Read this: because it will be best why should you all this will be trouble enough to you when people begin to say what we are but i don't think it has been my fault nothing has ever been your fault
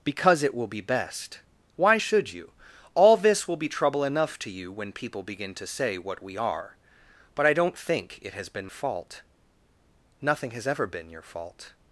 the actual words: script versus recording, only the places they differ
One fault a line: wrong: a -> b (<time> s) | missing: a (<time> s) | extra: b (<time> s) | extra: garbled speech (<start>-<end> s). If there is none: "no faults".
missing: my (8.7 s)